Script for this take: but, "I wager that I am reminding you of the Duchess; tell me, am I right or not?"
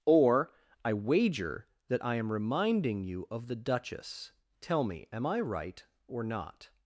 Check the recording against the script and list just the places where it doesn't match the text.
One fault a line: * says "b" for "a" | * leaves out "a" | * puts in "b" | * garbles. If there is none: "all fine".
* says "or" for "but"